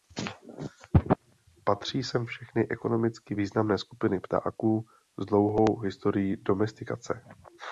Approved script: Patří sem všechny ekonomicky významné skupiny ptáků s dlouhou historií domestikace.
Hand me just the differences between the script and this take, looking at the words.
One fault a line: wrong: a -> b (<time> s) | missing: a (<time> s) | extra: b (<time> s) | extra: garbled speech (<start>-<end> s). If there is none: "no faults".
no faults